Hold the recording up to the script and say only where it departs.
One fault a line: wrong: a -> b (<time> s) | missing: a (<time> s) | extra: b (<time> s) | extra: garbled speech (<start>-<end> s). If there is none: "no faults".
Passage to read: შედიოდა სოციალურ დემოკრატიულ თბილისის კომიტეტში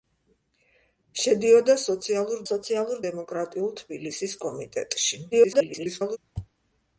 extra: სოციალურ (2.5 s)
extra: garbled speech (5.3-6.2 s)